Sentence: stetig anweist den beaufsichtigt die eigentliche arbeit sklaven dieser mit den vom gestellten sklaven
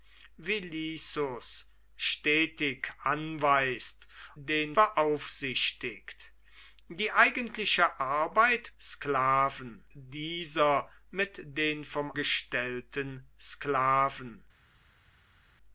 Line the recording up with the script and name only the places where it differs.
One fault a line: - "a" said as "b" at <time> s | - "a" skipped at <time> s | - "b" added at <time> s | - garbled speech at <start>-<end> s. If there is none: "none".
none